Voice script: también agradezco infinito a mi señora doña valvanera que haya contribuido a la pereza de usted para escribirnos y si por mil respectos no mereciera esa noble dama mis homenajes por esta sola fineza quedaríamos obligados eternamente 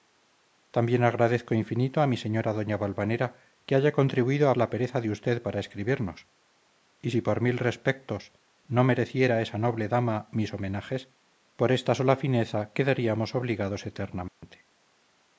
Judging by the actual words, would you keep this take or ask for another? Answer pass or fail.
pass